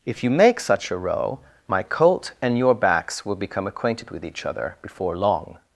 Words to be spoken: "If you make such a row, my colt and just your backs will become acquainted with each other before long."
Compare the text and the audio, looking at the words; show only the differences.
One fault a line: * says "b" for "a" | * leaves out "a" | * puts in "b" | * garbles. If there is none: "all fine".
* leaves out "just"